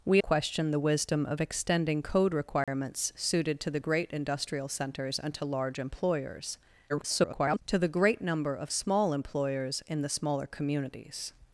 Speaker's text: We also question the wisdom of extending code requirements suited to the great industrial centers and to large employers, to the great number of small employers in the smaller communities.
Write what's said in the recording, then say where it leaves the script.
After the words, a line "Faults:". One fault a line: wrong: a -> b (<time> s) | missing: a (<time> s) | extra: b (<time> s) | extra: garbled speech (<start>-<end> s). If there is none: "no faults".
We question the wisdom of extending code requirements suited to the great industrial centers and to large employers, [garbled] to the great number of small employers in the smaller communities.
Faults:
missing: also (0.2 s)
extra: garbled speech (6.9-7.6 s)